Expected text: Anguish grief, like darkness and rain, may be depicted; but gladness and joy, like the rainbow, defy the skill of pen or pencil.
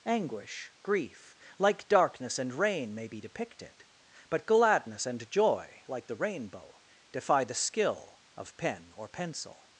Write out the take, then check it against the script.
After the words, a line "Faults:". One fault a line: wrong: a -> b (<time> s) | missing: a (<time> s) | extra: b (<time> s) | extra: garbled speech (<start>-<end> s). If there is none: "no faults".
Anguish grief, like darkness and rain, may be depicted; but gladness and joy, like the rainbow, defy the skill of pen or pencil.
Faults:
no faults